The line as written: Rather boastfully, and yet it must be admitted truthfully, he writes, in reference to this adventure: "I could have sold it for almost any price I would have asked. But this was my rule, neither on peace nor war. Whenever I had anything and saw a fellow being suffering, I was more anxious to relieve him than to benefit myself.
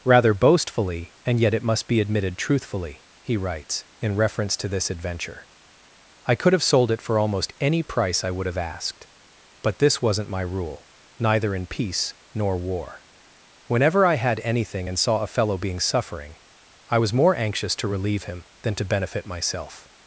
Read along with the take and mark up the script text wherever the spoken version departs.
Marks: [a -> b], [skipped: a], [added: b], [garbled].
Rather boastfully, and yet it must be admitted truthfully, he writes, in reference to this adventure: "I could have sold it for almost any price I would have asked. But this [was -> wasn't] my rule, neither [on -> in] peace nor war. Whenever I had anything and saw a fellow being suffering, I was more anxious to relieve him than to benefit myself.